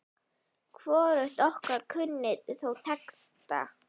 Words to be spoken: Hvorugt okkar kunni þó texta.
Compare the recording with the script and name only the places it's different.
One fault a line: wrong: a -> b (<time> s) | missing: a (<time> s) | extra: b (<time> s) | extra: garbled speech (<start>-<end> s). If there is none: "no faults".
no faults